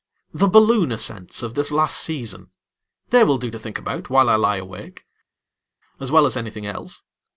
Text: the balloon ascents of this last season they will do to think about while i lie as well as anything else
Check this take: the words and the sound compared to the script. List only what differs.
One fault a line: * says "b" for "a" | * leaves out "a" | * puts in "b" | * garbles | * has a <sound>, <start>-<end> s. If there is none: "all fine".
* puts in "awake"